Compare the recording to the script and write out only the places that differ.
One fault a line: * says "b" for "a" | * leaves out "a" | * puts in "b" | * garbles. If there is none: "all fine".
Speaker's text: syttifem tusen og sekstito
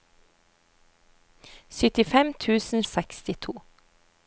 all fine